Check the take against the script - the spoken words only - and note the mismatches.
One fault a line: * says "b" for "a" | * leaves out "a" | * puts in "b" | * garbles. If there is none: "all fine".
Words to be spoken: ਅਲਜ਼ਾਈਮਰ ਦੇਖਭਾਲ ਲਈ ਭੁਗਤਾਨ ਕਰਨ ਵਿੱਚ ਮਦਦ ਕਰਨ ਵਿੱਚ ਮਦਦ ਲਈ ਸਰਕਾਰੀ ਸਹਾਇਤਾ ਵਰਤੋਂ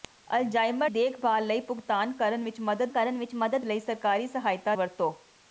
all fine